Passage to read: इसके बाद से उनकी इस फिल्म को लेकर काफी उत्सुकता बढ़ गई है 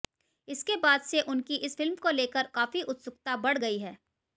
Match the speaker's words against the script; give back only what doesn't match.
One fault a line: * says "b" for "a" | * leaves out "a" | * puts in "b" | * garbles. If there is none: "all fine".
all fine